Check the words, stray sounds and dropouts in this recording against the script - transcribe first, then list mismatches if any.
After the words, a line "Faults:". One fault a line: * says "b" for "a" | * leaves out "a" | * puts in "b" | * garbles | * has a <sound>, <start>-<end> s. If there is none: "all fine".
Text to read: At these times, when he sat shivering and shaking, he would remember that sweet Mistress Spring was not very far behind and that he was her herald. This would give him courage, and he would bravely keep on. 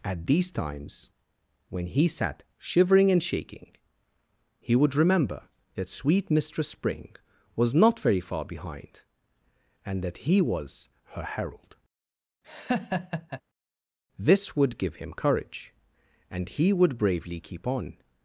At these times, when he sat shivering and shaking, he would remember that sweet Mistress Spring was not very far behind and that he was her herald. This would give him courage, and he would bravely keep on.
Faults:
* has a laugh, 12.4-13.4 s